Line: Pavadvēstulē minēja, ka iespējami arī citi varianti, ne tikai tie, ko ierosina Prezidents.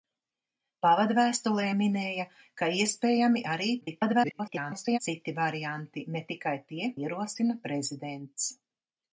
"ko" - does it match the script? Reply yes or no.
no